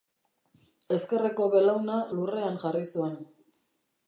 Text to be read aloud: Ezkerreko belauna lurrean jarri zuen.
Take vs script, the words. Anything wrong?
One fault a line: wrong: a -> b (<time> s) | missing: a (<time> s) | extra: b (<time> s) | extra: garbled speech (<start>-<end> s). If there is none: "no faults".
no faults